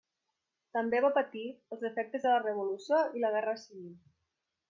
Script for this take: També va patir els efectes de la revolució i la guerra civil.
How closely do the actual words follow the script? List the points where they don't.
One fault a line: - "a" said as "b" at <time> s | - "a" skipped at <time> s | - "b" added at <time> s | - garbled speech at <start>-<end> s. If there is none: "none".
none